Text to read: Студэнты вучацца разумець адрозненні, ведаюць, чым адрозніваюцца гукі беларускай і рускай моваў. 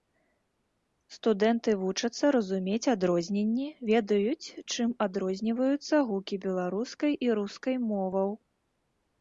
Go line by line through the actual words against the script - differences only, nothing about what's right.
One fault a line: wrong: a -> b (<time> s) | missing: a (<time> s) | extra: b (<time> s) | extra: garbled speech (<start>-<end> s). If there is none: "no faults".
no faults